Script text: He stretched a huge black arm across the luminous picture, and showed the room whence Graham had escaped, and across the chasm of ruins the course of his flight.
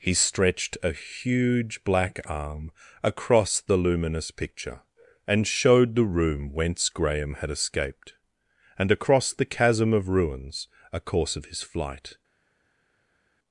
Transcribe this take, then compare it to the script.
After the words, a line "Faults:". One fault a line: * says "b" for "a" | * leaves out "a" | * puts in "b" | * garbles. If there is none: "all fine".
He stretched a huge black arm across the luminous picture, and showed the room whence Graham had escaped, and across the chasm of ruins a course of his flight.
Faults:
* says "a" for "the"